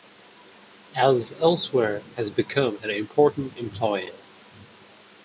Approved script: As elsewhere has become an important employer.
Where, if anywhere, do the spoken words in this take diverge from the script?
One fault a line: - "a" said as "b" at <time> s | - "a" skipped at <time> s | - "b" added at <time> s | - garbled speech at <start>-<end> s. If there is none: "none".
none